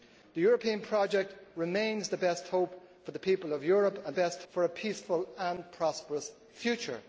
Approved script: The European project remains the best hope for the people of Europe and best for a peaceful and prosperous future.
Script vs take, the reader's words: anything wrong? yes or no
no